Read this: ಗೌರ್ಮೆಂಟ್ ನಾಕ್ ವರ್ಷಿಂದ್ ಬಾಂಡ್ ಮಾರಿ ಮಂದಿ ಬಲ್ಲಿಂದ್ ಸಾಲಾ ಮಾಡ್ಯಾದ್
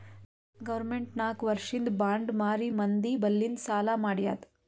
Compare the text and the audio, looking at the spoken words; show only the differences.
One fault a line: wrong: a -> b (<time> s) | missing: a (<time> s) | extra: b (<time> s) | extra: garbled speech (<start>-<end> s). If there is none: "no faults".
no faults